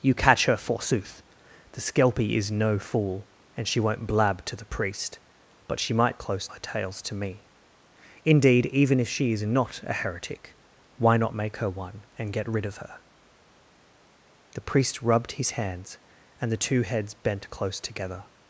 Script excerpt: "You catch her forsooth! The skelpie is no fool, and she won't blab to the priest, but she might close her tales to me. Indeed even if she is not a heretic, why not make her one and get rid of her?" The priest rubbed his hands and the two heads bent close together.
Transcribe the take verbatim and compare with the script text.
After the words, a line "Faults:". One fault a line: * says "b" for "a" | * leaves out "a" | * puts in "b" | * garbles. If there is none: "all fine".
"You catch her forsooth! The skelpie is no fool, and she won't blab to the priest, but she might close her tales to me. Indeed even if she is not a heretic, why not make her one and get rid of her?" The priest rubbed his hands and the two heads bent close together.
Faults:
all fine